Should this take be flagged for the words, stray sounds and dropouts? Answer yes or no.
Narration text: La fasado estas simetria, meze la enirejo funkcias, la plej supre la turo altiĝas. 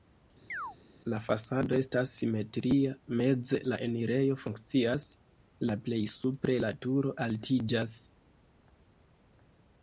yes